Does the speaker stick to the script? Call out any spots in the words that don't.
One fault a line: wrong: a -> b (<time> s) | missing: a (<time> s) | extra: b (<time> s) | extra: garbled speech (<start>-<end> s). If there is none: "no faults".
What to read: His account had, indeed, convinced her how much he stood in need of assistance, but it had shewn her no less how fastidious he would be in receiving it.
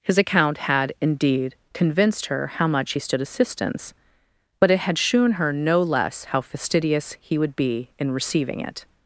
missing: in need of (3.2 s)